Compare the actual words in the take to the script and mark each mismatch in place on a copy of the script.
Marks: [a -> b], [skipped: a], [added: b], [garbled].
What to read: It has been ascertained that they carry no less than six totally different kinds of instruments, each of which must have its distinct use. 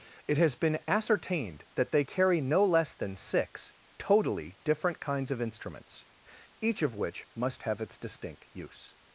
It has been ascertained that they carry no less than six totally different kinds of instruments, each of which must have its distinct use.